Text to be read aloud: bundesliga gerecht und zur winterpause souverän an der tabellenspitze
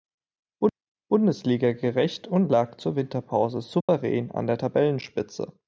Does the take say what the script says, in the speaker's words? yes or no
no